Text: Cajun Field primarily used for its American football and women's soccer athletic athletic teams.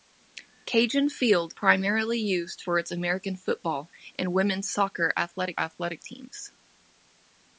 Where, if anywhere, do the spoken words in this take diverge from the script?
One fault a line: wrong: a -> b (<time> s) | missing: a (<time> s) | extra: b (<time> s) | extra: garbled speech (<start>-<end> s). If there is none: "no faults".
no faults